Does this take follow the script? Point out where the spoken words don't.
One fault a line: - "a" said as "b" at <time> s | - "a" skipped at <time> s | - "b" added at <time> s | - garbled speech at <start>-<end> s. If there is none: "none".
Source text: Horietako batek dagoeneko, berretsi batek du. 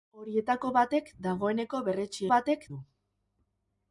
none